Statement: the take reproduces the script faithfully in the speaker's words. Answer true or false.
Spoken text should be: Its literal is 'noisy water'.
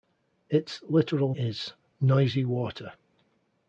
true